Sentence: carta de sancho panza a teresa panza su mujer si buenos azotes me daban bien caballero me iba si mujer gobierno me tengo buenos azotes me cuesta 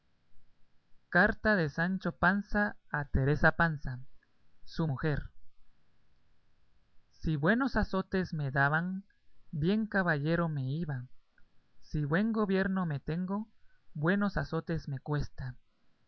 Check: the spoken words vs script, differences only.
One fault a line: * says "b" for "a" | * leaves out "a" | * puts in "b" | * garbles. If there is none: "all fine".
* says "buen" for "mujer"